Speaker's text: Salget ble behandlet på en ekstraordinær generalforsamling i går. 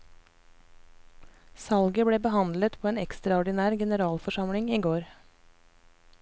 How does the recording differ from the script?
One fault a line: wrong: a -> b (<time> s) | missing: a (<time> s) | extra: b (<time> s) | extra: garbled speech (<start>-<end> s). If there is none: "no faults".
no faults